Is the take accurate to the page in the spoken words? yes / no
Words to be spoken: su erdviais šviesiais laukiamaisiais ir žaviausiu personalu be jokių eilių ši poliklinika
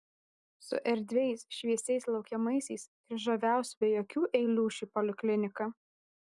no